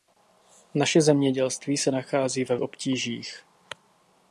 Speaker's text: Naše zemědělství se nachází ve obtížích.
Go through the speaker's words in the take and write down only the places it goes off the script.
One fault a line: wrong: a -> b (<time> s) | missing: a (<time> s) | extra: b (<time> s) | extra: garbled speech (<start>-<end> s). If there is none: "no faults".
no faults